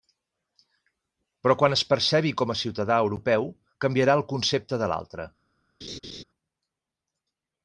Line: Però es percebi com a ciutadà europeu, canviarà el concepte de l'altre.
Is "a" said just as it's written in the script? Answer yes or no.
yes